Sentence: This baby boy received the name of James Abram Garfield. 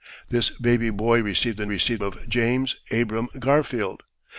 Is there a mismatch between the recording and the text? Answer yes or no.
yes